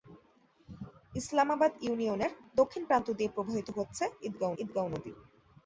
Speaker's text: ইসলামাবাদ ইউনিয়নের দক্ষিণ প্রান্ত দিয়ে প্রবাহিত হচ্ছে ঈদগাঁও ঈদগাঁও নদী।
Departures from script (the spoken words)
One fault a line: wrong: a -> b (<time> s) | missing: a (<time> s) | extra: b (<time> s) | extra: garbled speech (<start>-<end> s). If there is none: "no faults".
no faults